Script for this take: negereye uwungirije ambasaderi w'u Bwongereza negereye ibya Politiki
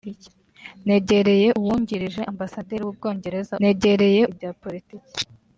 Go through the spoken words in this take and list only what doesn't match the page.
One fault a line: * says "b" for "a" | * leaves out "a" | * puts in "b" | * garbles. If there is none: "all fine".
all fine